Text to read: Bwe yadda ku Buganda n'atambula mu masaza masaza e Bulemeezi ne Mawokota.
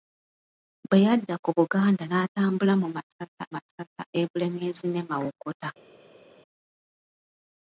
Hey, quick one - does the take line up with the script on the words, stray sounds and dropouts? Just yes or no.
yes